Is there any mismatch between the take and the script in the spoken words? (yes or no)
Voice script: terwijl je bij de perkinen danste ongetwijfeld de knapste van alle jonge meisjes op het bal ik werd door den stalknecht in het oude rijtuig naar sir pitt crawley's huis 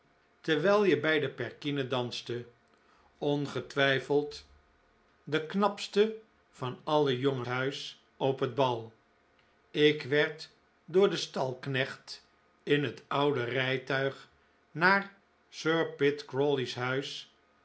yes